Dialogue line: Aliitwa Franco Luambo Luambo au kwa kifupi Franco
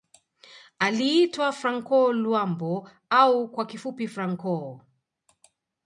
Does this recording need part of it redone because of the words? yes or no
yes